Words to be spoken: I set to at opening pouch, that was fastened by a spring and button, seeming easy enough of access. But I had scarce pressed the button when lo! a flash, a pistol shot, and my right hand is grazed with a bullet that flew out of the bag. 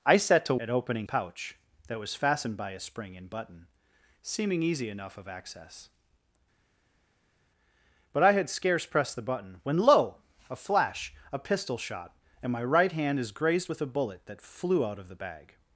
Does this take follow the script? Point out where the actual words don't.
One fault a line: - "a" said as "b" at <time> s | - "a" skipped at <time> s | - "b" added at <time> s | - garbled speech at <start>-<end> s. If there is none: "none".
none